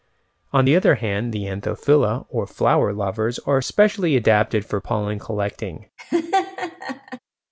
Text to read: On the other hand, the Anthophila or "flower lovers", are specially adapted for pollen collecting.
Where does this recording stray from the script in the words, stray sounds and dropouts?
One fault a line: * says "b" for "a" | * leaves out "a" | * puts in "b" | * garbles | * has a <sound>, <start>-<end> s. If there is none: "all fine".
* has a laugh, 6.0-7.2 s